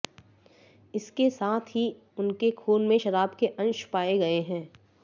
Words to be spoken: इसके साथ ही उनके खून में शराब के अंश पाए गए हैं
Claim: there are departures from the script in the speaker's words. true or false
false